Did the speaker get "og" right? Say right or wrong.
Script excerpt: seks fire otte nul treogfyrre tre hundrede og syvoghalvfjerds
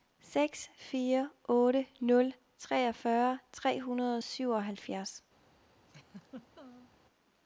right